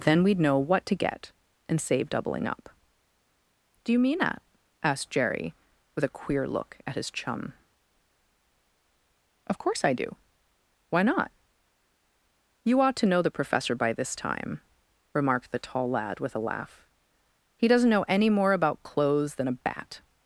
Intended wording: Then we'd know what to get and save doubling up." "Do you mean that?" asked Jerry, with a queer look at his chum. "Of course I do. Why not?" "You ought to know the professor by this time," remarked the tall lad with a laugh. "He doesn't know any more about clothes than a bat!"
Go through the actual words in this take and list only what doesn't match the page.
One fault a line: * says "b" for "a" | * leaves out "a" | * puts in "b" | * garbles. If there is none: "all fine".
all fine